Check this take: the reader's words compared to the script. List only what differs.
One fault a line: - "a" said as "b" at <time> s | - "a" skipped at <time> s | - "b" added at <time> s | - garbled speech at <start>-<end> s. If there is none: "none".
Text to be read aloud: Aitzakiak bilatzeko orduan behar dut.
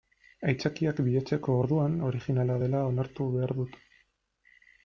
- "originala dela onartu" added at 2.1 s